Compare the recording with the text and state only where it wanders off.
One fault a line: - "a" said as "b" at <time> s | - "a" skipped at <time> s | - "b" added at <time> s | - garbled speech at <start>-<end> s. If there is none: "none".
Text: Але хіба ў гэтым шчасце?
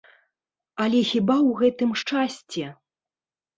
none